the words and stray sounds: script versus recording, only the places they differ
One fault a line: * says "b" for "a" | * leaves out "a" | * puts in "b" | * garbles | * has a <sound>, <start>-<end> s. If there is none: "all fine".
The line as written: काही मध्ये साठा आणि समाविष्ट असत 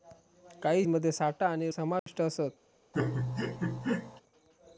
* has a dropout, 2.0-2.1 s
* has a laugh, 2.9-4.2 s